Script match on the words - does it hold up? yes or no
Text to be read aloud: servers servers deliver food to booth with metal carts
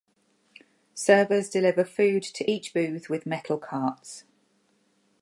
no